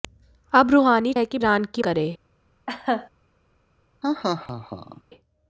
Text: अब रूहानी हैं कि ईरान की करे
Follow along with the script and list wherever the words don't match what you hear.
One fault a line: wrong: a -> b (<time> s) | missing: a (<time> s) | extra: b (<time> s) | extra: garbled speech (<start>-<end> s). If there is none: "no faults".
no faults